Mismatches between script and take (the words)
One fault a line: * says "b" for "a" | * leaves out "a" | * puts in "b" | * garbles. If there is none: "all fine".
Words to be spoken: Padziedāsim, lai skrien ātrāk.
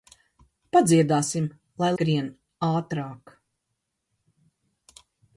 all fine